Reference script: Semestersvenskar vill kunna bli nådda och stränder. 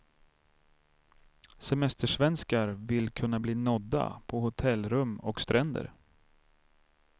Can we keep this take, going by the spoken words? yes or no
no